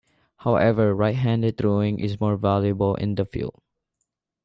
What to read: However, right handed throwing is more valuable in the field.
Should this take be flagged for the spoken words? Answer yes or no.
no